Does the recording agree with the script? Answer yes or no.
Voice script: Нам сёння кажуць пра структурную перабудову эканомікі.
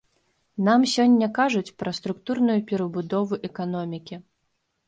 yes